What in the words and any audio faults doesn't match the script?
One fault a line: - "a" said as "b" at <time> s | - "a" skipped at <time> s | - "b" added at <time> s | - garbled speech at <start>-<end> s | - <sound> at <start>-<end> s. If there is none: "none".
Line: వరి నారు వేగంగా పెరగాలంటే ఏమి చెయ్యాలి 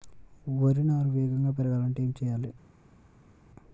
none